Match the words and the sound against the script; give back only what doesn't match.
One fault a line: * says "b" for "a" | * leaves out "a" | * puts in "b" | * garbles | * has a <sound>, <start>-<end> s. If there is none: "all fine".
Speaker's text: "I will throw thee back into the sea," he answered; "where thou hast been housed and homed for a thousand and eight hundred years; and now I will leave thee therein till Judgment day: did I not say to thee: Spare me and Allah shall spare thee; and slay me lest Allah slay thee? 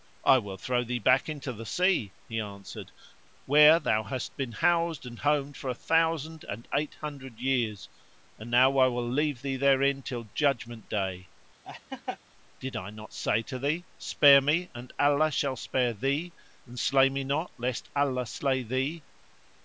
* has a laugh, 11.6-12.2 s
* puts in "not"